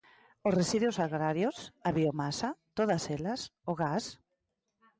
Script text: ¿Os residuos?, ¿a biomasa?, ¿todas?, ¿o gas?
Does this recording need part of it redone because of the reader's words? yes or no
yes